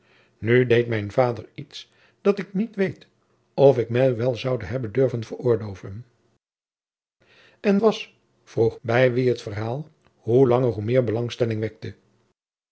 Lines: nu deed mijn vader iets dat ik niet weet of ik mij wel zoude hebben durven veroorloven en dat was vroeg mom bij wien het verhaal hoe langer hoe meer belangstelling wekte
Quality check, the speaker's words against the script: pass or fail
fail